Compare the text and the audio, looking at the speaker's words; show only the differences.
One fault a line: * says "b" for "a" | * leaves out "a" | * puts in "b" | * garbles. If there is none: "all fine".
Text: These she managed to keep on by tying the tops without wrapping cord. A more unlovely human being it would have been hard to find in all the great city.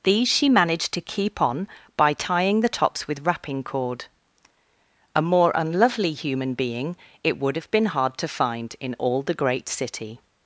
* says "with" for "without"